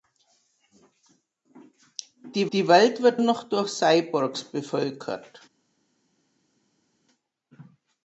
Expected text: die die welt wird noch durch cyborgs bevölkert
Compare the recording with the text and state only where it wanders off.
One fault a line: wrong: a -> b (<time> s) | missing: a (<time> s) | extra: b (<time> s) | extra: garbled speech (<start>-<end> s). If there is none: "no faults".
no faults